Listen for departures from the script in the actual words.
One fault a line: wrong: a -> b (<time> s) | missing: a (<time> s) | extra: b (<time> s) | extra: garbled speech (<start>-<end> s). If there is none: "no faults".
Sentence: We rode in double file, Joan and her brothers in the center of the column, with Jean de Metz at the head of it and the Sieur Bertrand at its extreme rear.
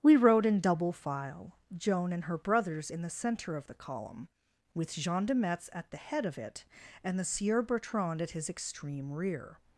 wrong: its -> his (8.3 s)